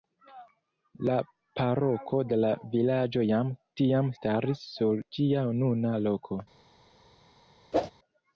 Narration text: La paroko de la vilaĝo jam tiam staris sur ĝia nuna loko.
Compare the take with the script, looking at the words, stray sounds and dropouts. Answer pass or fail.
fail